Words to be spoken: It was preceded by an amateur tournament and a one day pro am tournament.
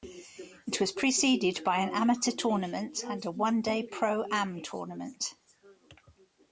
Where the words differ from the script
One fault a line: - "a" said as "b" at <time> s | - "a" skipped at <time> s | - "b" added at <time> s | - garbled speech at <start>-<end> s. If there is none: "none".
none